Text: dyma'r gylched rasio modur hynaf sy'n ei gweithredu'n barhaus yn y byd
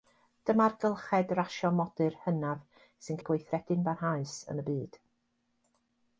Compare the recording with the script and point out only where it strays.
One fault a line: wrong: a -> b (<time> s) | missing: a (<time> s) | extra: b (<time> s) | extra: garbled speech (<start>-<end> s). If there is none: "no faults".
no faults